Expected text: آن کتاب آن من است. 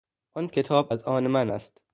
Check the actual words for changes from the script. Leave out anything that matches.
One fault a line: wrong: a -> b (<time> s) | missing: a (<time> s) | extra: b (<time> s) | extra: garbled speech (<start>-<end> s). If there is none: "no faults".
extra: از (0.9 s)